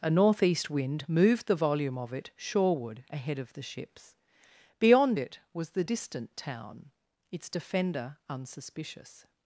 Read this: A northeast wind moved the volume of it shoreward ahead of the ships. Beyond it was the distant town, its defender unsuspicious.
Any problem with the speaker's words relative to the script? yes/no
no